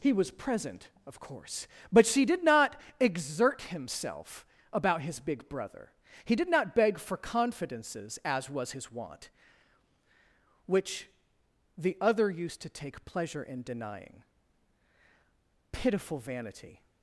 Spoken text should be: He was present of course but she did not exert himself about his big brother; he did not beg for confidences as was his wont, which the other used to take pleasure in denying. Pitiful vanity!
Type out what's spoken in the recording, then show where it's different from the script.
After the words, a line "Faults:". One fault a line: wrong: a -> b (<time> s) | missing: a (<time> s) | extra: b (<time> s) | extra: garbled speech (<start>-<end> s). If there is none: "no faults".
He was present of course but she did not exert himself about his big brother; he did not beg for confidences as was his wont, which the other used to take pleasure in denying. Pitiful vanity!
Faults:
no faults